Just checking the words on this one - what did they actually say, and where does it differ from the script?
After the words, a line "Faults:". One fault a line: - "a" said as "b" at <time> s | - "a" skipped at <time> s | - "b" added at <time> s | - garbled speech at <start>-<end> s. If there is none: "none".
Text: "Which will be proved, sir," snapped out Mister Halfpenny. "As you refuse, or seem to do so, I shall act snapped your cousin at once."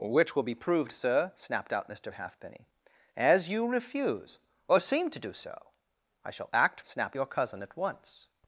"Which will be proved, sir," snapped out Mister Halfpenny. "As you refuse, or seem to do so, I shall act snapped your cousin at once."
Faults:
none